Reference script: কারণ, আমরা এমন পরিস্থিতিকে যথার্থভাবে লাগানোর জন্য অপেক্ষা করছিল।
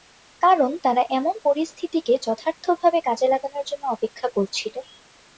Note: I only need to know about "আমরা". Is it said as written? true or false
false